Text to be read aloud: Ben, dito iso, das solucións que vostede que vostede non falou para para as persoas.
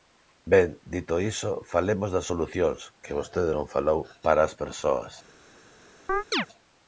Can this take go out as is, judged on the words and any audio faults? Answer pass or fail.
fail